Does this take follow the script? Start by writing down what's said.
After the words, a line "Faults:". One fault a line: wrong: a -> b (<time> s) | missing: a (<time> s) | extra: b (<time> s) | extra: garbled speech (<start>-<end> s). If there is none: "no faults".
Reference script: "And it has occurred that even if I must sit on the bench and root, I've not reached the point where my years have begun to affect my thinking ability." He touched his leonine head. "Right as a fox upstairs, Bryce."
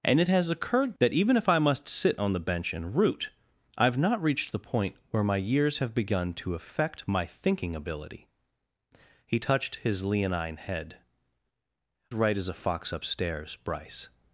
"And it has occurred that even if I must sit on the bench and root, I've not reached the point where my years have begun to affect my thinking ability." He touched his leonine head. "Right as a fox upstairs, Bryce."
Faults:
no faults